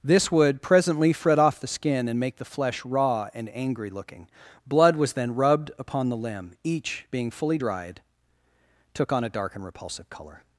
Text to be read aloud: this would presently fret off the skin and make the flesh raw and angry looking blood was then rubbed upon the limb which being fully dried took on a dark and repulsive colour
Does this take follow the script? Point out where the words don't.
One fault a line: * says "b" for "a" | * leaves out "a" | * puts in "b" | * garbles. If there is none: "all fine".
* says "each" for "which"